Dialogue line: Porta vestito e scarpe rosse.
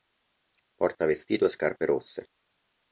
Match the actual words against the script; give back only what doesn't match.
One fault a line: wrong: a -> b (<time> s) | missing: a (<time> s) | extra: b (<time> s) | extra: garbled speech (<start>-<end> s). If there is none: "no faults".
no faults